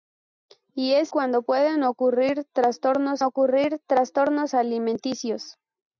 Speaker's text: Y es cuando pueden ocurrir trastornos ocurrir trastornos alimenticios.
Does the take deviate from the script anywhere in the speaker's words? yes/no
no